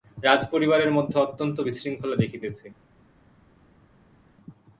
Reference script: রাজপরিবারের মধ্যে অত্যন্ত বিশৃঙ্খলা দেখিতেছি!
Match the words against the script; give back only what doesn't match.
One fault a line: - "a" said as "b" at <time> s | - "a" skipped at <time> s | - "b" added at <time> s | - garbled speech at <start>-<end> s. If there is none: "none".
none